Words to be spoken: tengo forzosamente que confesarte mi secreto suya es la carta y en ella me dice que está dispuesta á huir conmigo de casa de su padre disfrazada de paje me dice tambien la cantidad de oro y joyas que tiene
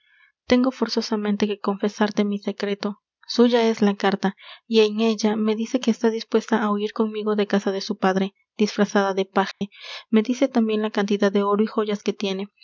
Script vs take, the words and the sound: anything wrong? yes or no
yes